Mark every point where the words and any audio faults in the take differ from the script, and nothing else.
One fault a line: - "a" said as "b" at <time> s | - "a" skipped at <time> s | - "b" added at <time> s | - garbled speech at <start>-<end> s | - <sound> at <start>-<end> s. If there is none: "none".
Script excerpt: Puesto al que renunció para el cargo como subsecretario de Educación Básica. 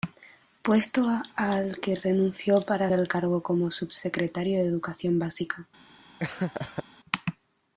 - laugh at 6.2-6.8 s